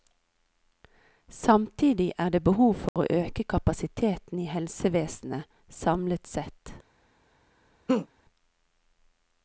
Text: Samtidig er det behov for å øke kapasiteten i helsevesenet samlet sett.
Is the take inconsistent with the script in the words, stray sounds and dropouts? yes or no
yes